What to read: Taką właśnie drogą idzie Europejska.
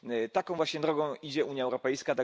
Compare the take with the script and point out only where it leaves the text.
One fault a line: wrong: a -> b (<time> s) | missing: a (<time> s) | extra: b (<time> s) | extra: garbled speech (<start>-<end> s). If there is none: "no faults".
extra: Unia (1.5 s)